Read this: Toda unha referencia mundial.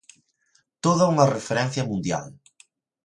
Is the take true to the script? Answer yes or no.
yes